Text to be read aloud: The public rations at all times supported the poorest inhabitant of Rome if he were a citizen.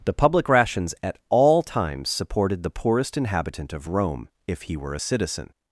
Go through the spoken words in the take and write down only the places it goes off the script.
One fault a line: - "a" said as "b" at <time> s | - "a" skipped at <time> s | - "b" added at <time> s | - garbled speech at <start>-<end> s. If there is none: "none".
none